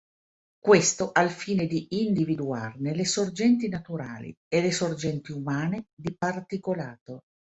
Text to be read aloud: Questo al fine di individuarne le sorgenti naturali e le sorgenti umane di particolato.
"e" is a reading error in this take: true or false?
false